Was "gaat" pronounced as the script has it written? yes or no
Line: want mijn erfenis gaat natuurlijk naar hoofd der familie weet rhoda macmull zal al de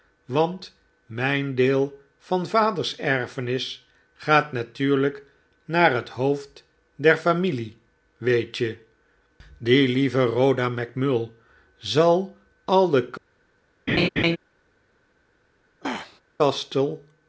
yes